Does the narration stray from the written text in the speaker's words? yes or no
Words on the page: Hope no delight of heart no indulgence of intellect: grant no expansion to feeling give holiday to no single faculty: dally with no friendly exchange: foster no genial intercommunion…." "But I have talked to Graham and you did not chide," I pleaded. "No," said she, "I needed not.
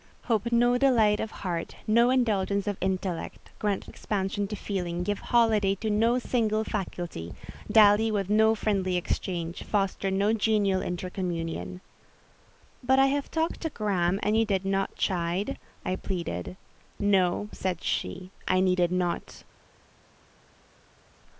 yes